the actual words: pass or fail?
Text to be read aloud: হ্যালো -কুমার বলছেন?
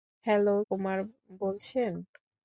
pass